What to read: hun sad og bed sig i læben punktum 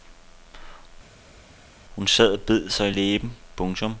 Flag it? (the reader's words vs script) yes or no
no